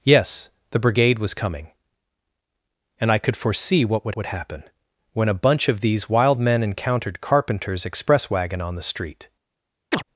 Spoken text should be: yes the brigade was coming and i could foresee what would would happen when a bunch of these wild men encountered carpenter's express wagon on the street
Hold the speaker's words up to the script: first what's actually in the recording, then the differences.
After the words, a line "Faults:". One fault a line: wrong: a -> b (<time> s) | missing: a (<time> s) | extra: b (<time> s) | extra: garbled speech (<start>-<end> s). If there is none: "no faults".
yes the brigade was coming and i could foresee what would would happen when a bunch of these wild men encountered carpenter's express wagon on the street
Faults:
no faults